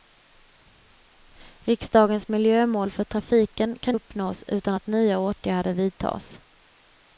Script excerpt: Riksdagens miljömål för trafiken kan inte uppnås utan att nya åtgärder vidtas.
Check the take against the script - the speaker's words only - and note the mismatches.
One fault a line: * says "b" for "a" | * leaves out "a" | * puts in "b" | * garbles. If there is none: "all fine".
* leaves out "inte"